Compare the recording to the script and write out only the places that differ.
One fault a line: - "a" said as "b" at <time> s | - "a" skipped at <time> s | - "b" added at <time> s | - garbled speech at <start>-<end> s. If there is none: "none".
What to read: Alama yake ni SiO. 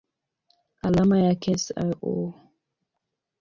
- "ni" skipped at 1.6 s